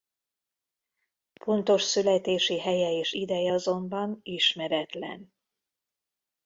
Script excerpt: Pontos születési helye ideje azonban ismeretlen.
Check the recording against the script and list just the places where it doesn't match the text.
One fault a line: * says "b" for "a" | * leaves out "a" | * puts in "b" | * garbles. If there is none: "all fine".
* puts in "és"